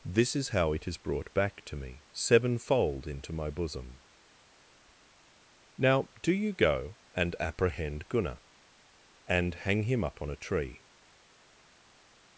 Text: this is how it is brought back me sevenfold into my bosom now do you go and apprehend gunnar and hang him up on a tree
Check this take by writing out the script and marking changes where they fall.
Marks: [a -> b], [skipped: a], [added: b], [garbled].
this is how it is brought back [added: to] me sevenfold into my bosom now do you go and apprehend gunnar and hang him up on a tree